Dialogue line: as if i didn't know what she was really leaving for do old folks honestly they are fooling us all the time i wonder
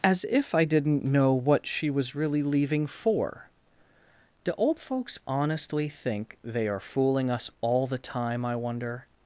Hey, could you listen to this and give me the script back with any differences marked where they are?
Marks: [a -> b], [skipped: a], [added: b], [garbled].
as if i didn't know what she was really leaving for do old folks honestly [added: think] they are fooling us all the time i wonder